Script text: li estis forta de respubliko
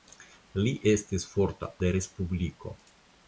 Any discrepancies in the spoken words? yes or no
no